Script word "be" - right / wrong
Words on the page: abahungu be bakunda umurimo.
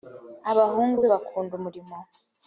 right